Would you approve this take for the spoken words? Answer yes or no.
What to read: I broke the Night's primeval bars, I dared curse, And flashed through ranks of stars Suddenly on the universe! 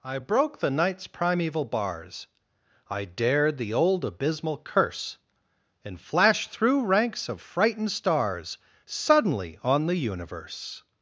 no